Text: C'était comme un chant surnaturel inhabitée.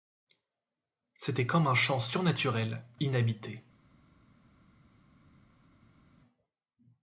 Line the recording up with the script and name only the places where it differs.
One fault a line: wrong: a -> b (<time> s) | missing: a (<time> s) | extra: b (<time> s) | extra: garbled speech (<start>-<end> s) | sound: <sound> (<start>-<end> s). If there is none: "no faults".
no faults